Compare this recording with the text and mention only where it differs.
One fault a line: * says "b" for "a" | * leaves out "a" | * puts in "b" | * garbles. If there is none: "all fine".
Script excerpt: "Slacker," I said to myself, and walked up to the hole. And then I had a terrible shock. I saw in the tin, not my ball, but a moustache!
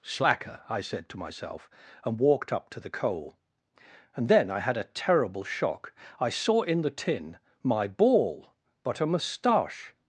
* says "coal" for "hole"
* leaves out "not"